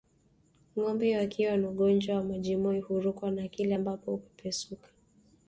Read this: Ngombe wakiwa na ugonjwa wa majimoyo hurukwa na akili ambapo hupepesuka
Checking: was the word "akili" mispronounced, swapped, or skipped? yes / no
no